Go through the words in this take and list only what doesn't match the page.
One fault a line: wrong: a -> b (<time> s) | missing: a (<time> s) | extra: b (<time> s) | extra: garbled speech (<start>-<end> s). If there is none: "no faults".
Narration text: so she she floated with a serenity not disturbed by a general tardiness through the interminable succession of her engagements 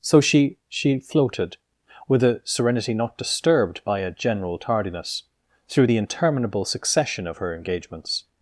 no faults